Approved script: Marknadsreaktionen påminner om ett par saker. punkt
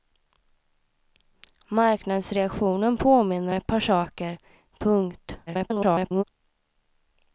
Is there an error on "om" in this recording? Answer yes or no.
yes